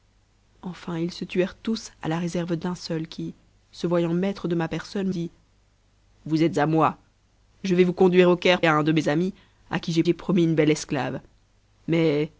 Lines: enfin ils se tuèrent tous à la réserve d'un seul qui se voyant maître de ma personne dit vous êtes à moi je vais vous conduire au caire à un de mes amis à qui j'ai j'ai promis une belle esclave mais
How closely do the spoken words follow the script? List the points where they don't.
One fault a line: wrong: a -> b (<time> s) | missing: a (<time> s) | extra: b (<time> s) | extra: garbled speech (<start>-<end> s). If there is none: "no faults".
no faults